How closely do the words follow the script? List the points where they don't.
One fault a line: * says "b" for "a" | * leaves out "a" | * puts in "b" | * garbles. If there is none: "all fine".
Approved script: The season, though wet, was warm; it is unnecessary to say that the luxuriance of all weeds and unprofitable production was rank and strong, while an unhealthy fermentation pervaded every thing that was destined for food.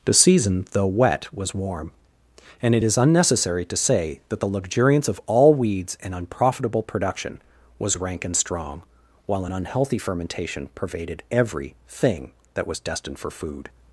* puts in "and"